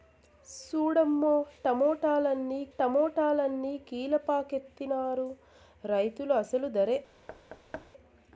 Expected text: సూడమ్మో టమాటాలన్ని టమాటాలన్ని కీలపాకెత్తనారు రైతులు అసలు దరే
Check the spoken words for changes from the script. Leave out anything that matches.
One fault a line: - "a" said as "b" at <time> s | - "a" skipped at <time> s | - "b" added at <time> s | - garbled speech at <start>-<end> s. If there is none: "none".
none